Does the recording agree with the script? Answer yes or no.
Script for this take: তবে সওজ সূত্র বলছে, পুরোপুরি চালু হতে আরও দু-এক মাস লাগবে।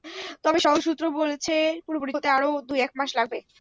no